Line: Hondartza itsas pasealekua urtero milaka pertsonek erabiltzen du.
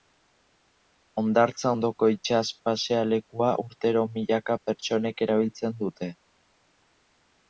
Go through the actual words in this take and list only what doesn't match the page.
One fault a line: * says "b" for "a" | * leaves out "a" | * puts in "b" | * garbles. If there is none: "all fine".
* puts in "ondoko"
* says "dute" for "du"